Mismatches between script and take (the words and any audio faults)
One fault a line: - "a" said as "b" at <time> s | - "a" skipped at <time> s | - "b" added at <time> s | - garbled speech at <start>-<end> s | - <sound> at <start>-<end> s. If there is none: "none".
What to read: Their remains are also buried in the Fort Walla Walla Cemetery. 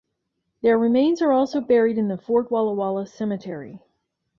none